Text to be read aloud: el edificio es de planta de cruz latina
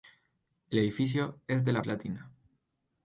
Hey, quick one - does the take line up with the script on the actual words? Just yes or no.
no